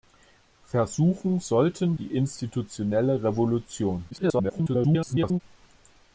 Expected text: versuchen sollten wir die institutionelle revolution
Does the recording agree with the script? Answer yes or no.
no